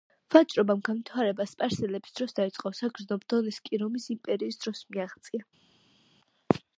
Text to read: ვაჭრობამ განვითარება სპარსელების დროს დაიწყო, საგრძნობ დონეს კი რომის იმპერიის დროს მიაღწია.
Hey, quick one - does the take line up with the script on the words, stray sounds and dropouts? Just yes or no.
yes